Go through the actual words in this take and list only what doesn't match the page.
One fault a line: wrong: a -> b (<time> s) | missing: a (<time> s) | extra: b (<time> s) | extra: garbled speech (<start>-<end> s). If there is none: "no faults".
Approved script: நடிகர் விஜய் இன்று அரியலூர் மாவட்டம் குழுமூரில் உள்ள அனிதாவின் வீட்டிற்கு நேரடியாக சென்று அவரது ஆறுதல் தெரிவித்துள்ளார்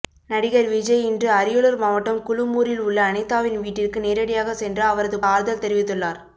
no faults